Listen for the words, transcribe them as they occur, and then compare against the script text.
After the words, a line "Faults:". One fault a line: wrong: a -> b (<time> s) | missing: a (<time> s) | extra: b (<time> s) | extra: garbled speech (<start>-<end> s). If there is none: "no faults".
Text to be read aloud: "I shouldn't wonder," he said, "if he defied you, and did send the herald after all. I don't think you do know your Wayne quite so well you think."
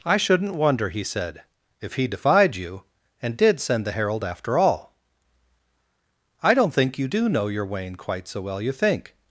"I shouldn't wonder," he said, "if he defied you, and did send the herald after all. I don't think you do know your Wayne quite so well you think."
Faults:
no faults